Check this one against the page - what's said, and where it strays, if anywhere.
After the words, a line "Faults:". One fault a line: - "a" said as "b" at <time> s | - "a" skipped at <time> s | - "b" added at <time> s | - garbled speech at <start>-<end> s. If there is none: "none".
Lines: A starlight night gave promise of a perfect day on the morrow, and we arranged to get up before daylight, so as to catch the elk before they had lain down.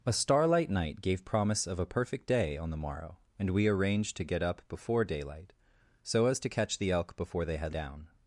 A starlight night gave promise of a perfect day on the morrow, and we arranged to get up before daylight, so as to catch the elk before they had down.
Faults:
- "lain" skipped at 7.8 s